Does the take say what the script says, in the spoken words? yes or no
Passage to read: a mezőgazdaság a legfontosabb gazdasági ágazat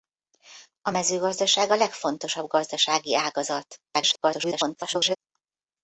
no